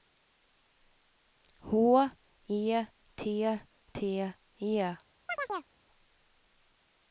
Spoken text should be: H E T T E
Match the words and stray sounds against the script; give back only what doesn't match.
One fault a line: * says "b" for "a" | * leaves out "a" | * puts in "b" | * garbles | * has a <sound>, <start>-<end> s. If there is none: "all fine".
* has a chirp, 5.3-5.7 s